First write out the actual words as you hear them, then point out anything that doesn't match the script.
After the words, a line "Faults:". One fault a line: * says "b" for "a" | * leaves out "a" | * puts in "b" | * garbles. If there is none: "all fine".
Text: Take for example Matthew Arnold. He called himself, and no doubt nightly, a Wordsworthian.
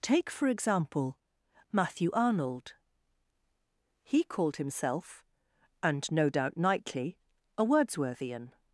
Take for example Matthew Arnold. He called himself, and no doubt nightly, a Wordsworthian.
Faults:
all fine